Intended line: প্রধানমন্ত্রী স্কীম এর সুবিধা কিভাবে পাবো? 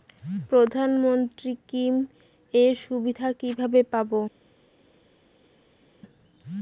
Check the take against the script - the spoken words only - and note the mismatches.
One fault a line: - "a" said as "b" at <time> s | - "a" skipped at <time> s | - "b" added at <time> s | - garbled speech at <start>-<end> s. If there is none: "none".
none